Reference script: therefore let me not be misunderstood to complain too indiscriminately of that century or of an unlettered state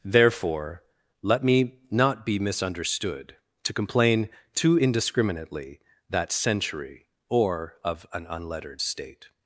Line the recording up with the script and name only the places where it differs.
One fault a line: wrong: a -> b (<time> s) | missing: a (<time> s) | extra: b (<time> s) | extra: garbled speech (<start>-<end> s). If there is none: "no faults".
missing: of (5.8 s)